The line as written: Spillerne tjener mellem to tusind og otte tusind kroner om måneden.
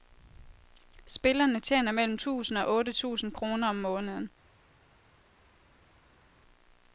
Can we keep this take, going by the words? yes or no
no